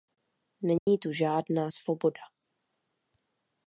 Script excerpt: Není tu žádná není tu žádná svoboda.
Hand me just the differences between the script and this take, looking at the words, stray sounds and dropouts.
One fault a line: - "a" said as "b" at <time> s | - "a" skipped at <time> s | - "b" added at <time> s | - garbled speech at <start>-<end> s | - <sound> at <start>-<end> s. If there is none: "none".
- dropout at 0.8-0.9 s
- "není tu žádná" skipped at 1.7 s